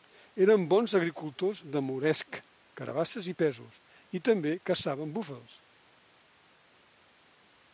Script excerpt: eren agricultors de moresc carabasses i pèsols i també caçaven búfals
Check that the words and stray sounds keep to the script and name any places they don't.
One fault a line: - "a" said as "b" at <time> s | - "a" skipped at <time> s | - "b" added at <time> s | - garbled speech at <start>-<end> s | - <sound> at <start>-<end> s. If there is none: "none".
- "bons" added at 0.7 s